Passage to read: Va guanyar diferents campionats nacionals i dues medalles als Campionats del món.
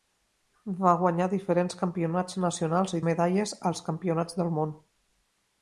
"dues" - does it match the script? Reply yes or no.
no